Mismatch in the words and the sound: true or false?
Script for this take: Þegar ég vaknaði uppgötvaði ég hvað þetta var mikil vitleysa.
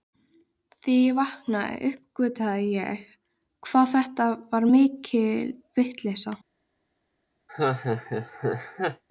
true